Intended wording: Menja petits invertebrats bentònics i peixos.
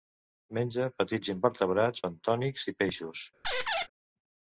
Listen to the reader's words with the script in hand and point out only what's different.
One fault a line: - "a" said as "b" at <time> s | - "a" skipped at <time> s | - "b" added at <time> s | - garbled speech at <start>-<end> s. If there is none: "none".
none